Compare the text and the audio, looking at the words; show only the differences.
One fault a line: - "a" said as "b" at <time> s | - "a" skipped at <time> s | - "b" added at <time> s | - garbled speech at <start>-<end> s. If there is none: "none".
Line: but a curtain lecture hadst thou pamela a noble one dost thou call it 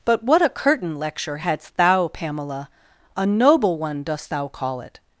- "what" added at 0.2 s